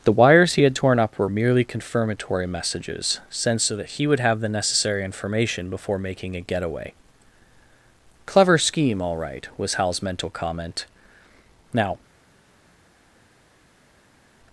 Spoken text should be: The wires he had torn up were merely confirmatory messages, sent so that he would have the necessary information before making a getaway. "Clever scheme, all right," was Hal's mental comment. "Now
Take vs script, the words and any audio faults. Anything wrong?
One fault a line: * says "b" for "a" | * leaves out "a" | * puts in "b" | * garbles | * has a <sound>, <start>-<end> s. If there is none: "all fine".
all fine